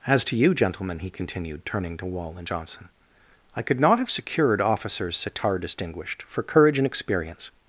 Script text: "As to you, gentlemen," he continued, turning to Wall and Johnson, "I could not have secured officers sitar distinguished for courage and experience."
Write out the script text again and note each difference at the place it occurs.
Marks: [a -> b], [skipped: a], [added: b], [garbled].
"As to you, gentlemen," he continued, turning to Wall and Johnson, "I could not have secured officers sitar distinguished for courage and experience."